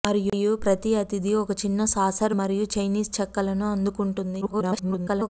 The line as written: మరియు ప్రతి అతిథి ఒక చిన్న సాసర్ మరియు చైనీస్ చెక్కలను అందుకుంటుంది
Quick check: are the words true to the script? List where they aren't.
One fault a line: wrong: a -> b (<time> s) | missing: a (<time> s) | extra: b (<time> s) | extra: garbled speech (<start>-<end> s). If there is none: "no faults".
extra: garbled speech (4.4-5.3 s)